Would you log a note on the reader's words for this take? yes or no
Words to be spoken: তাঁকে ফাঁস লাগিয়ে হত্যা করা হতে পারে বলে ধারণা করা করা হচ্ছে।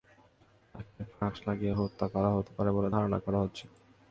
yes